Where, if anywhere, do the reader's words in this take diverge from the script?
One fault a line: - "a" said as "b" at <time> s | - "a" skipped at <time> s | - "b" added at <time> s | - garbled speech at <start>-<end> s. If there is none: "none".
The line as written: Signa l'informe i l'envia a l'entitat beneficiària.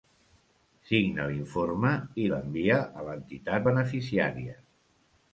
none